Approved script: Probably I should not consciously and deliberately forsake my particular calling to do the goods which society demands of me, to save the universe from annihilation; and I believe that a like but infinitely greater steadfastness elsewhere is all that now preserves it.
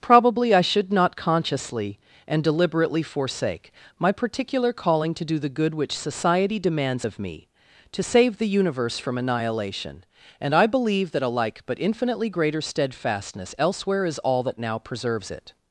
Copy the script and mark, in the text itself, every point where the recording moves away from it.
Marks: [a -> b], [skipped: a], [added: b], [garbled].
Probably I should not consciously and deliberately forsake my particular calling to do the [goods -> good] which society demands of me, to save the universe from annihilation; and I believe that a like but infinitely greater steadfastness elsewhere is all that now preserves it.